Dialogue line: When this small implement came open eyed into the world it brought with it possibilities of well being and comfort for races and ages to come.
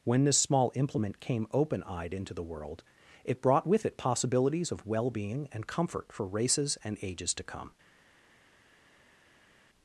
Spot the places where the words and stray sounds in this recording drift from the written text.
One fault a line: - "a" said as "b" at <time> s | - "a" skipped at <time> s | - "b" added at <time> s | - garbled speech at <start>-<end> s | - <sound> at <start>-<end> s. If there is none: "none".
none